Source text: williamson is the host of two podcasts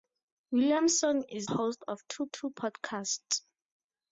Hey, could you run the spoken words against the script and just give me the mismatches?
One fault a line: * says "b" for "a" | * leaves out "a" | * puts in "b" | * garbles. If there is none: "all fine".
* leaves out "the"
* puts in "two"